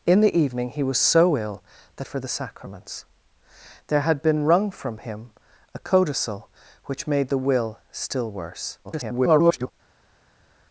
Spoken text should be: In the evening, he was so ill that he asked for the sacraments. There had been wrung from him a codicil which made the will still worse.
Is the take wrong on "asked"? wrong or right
wrong